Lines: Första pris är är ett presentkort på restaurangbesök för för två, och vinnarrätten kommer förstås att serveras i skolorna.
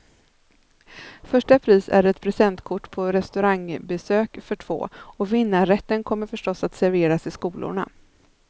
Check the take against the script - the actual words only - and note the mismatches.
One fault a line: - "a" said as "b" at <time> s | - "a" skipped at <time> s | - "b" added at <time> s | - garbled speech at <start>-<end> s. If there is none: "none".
- "är" skipped at 2.0 s
- "för" skipped at 4.5 s